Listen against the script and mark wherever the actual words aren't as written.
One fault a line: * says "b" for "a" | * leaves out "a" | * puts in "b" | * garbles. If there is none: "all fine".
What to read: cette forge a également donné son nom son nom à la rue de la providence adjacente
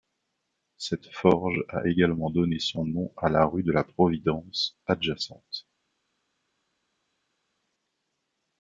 * leaves out "son nom"